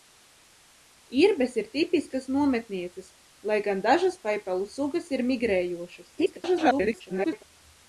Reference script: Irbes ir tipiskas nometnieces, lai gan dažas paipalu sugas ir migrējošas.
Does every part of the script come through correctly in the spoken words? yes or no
no